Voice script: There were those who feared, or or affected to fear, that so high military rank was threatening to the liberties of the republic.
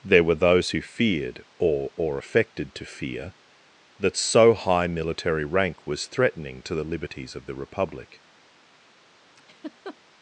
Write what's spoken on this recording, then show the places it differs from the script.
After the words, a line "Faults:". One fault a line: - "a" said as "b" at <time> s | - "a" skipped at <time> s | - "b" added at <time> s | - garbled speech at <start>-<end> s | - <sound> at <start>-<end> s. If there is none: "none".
There were those who feared, or or affected to fear, that so high military rank was threatening to the liberties of the republic.
Faults:
- laugh at 9.4-10.0 s